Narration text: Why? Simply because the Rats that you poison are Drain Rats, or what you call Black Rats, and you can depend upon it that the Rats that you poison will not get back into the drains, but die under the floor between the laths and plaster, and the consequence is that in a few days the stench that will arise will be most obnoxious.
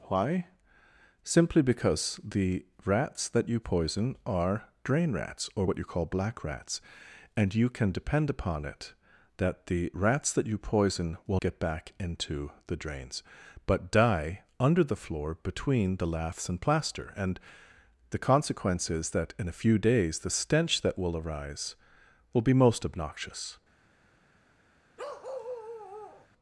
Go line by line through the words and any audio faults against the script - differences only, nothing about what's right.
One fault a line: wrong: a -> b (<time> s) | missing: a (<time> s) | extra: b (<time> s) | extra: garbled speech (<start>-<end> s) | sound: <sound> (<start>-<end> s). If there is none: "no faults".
missing: not (11.4 s)
sound: bark (25.0-26.3 s)